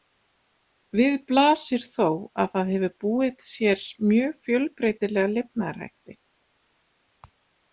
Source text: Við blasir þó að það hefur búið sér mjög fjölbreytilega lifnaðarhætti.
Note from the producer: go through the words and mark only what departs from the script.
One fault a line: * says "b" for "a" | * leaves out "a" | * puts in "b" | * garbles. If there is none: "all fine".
all fine